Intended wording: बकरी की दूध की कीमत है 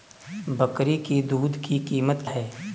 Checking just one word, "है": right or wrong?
right